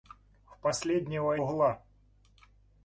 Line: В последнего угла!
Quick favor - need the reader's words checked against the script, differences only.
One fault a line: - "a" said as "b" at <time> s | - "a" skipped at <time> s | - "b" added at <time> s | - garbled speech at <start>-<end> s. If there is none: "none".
none